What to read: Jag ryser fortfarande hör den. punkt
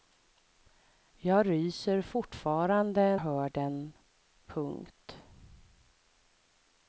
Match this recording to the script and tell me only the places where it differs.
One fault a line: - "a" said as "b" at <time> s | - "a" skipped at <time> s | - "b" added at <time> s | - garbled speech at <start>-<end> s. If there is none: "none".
none